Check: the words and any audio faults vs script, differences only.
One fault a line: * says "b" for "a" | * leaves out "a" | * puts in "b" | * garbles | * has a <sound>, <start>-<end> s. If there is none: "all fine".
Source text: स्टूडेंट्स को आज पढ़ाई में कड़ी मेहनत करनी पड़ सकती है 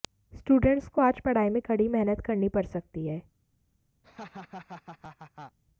* has a laugh, 4.0-5.6 s